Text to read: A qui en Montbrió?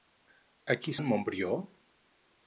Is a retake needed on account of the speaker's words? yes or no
no